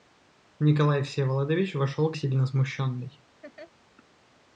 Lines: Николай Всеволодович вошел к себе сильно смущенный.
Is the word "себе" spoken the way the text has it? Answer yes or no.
no